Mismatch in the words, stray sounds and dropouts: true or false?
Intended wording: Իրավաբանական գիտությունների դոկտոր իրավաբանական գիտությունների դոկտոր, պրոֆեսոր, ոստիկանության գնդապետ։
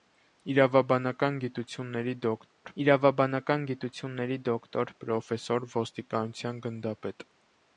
true